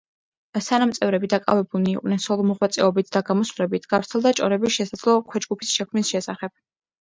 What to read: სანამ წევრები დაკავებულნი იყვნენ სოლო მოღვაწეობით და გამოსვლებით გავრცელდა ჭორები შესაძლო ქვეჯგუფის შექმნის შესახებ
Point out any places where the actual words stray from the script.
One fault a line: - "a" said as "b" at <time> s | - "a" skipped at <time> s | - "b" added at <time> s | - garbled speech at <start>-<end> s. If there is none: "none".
none